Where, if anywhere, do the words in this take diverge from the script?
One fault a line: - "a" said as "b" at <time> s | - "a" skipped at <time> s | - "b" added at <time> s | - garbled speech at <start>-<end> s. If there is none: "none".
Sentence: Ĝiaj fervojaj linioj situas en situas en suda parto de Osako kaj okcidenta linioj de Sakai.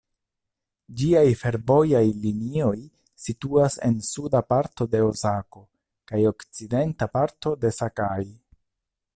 - "situas en" skipped at 4.0 s
- "linioj" said as "parto" at 7.2 s